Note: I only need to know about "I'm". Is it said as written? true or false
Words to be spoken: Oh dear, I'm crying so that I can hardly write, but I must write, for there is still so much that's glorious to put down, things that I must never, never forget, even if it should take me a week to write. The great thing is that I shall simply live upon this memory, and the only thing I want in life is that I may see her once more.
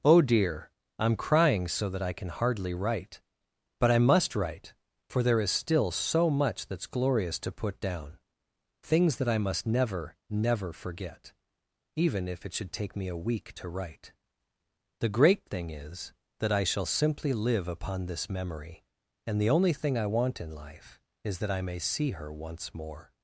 true